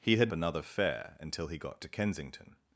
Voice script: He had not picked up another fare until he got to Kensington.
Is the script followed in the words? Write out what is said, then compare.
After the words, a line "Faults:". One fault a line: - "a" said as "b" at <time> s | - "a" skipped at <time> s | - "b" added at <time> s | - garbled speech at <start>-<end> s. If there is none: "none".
He had another fare until he got to Kensington.
Faults:
- "not picked up" skipped at 0.3 s